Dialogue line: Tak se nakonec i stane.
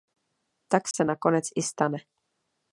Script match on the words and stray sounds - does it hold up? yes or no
no